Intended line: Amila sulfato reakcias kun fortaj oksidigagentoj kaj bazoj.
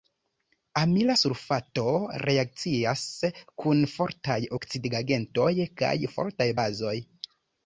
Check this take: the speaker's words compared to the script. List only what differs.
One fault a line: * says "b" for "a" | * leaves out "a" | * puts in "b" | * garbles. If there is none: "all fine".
* puts in "fortaj"